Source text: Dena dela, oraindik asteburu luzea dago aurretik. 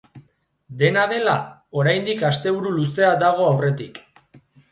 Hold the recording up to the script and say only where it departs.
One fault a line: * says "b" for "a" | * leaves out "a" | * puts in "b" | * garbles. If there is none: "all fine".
all fine